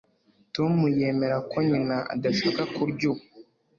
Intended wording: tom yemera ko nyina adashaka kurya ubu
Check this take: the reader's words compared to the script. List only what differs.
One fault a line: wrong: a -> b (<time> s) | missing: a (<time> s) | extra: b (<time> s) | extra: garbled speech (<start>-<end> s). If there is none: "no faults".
no faults